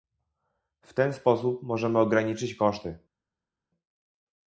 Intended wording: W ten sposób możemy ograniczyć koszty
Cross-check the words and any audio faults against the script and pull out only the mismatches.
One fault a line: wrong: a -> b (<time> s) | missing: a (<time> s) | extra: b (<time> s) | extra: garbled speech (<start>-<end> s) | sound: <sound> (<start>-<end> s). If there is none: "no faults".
no faults